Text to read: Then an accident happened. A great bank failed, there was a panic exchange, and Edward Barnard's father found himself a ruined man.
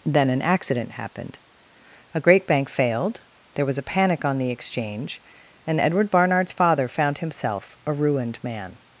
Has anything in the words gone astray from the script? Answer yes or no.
yes